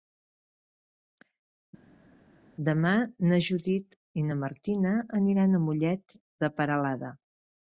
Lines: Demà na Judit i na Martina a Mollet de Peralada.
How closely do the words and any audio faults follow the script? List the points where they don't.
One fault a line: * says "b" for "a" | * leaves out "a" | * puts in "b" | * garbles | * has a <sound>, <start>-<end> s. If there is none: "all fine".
* puts in "aniran"